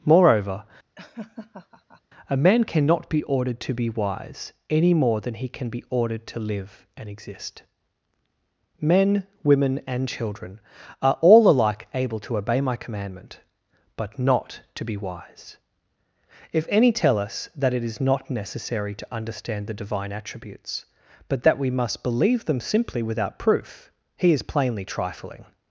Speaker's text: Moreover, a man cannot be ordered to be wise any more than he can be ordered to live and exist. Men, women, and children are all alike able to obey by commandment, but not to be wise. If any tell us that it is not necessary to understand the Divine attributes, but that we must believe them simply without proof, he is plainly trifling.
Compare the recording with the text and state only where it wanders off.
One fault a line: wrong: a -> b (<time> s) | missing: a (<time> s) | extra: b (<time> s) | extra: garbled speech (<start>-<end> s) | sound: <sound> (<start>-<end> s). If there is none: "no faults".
sound: laugh (1.0-2.0 s)
wrong: by -> my (12.6 s)